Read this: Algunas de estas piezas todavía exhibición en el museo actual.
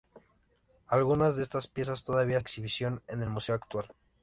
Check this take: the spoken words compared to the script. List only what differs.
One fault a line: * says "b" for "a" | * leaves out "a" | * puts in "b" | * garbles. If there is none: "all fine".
all fine